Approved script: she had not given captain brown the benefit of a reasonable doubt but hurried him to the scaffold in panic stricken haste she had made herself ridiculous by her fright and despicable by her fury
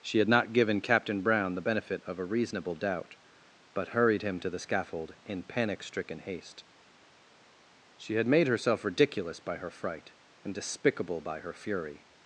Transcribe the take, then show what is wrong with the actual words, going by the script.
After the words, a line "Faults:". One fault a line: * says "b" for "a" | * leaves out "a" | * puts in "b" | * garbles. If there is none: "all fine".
she had not given captain brown the benefit of a reasonable doubt but hurried him to the scaffold in panic stricken haste she had made herself ridiculous by her fright and despicable by her fury
Faults:
all fine